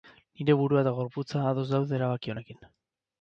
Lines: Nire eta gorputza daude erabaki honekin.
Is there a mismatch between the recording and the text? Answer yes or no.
yes